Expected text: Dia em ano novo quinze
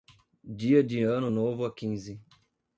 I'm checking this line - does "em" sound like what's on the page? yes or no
no